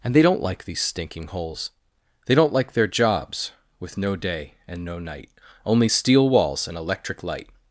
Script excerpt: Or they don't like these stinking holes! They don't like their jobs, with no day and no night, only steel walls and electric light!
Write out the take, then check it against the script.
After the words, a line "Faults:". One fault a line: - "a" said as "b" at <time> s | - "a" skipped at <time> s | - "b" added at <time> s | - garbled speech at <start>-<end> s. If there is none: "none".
And they don't like these stinking holes! They don't like their jobs, with no day and no night, only steel walls and electric light!
Faults:
- "Or" said as "And" at 0.0 s